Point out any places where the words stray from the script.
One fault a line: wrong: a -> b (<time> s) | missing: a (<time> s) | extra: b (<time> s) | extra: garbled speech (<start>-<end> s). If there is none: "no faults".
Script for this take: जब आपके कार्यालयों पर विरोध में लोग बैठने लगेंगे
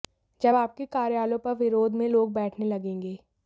no faults